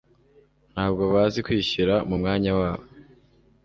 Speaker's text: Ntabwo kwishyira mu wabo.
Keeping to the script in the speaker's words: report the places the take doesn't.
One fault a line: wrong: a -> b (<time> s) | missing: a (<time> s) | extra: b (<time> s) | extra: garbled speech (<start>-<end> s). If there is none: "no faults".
extra: bazi (1.1 s)
extra: mwanya (2.2 s)